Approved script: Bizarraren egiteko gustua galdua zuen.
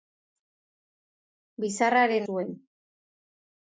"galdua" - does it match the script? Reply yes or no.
no